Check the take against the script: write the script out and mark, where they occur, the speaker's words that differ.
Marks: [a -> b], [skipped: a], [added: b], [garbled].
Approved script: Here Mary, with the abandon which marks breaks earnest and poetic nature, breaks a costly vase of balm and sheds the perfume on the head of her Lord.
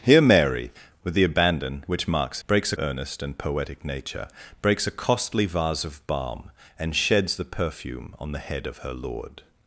Here Mary, with the abandon which marks breaks earnest and poetic nature, breaks a costly vase of balm and sheds the perfume on the head of her Lord.